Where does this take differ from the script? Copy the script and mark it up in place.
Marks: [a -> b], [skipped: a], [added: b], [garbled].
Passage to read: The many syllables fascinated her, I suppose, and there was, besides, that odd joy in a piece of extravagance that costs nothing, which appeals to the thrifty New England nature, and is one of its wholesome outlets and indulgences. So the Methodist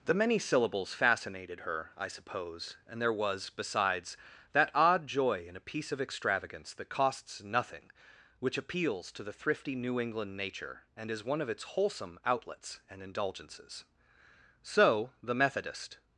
The many syllables fascinated her, I suppose, and there was, besides, that odd joy in a piece of extravagance that costs nothing, which appeals to the thrifty New England nature, and is one of its wholesome outlets and indulgences. So the Methodist